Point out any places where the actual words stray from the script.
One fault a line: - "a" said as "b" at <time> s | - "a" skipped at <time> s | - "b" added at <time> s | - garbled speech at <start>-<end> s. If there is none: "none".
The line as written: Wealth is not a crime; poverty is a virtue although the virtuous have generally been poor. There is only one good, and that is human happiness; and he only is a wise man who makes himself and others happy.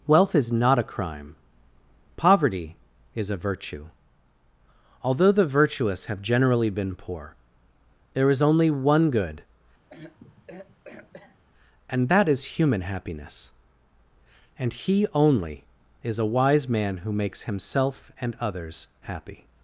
none